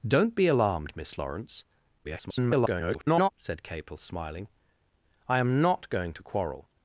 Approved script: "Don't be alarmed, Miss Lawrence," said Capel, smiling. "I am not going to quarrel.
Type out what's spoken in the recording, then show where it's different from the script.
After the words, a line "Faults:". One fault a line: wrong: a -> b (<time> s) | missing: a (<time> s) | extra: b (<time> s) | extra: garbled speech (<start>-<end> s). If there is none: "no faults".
"Don't be alarmed, Miss Lawrence," [garbled] said Capel, smiling. "I am not going to quarrel.
Faults:
extra: garbled speech (2.0-3.3 s)